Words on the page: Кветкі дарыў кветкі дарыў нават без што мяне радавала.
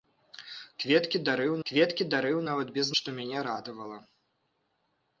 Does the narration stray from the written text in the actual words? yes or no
no